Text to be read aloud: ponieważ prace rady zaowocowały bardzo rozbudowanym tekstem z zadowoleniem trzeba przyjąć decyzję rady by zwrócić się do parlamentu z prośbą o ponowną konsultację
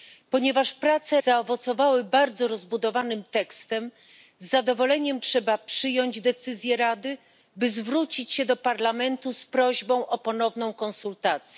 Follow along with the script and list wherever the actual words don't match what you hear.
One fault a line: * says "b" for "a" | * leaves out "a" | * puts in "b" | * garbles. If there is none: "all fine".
* leaves out "rady"